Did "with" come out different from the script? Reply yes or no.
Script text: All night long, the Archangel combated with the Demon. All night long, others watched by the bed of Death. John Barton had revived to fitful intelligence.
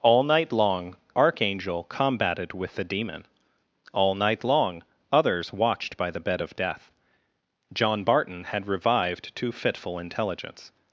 no